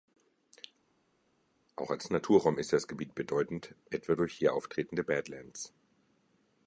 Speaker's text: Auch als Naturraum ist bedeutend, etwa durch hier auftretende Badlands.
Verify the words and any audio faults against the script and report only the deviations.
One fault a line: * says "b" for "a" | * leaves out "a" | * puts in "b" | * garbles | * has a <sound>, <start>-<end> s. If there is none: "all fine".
* puts in "das Gebiet"